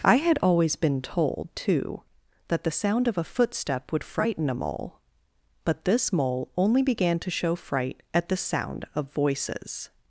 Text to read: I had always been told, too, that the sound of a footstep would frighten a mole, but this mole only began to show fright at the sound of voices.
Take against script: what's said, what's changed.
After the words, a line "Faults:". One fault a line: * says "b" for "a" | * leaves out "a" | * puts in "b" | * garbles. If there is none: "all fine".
I had always been told, too, that the sound of a footstep would frighten a mole, but this mole only began to show fright at the sound of voices.
Faults:
all fine